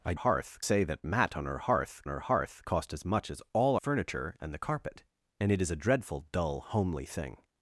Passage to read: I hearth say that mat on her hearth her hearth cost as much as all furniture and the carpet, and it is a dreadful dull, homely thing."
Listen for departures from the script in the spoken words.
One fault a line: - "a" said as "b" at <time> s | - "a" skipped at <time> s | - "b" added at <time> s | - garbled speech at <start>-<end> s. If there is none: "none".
none